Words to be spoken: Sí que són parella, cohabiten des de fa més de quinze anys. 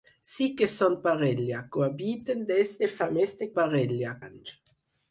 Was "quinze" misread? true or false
true